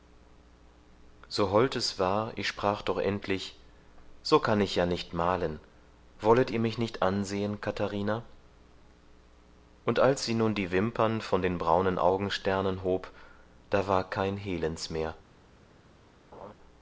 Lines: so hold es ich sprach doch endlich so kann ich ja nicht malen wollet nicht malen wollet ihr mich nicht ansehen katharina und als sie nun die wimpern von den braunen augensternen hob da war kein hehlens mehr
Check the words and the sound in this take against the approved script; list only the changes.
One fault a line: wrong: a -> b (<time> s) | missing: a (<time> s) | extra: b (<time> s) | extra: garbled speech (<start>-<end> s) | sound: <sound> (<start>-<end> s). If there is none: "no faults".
extra: war (2.0 s)
missing: nicht malen wollet (6.5 s)
sound: laugh (16.3-16.5 s)